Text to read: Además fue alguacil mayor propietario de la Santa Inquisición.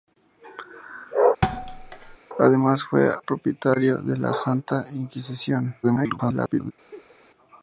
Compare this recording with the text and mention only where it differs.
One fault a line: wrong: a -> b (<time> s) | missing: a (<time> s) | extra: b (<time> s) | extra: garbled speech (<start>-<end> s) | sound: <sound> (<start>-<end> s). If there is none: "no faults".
sound: thud (1.4-2.2 s)
missing: alguacil mayor (3.1 s)
extra: garbled speech (5.8-6.7 s)
sound: laugh (6.9-7.1 s)